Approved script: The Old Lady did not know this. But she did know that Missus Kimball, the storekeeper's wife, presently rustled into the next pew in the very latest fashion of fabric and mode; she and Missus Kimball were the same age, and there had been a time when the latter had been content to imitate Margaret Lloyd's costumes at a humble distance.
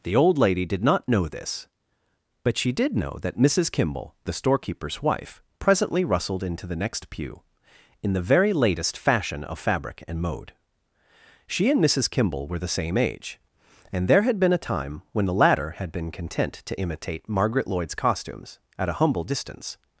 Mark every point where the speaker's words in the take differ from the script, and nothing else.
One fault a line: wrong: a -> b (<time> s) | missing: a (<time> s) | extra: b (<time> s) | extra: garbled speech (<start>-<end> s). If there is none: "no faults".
no faults